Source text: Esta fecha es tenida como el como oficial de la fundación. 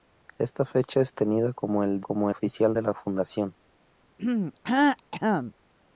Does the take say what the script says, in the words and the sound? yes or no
no